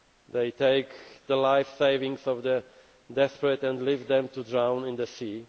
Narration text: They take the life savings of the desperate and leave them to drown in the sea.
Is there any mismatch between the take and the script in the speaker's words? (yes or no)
no